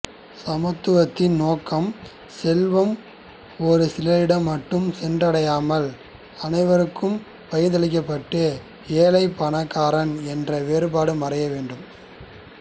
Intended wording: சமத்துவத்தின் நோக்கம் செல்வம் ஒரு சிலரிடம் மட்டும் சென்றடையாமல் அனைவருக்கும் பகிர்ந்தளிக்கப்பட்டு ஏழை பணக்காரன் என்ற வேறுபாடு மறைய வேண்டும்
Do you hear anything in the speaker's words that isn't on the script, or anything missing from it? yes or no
no